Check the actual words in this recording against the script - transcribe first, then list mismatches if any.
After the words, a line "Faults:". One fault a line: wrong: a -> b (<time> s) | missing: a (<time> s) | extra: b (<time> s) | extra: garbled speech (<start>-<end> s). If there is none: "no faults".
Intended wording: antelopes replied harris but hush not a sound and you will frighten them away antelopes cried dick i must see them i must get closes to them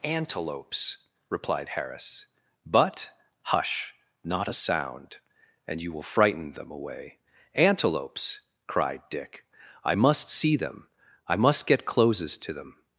antelopes replied harris but hush not a sound and you will frighten them away antelopes cried dick i must see them i must get closes to them
Faults:
no faults